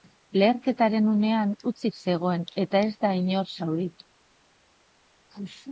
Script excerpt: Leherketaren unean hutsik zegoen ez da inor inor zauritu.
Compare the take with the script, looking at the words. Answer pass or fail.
fail